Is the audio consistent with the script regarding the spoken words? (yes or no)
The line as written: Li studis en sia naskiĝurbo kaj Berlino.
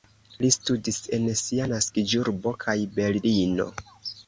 yes